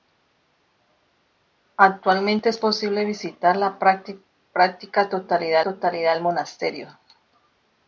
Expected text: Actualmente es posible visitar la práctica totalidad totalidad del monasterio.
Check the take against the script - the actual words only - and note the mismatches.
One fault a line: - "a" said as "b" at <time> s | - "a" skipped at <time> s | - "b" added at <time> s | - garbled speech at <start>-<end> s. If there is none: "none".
none